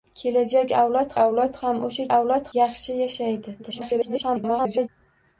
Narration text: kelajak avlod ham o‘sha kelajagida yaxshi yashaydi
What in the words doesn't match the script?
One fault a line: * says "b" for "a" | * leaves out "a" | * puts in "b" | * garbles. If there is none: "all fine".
* puts in "avlod"
* says "avlod" for "kelajagida"
* garbles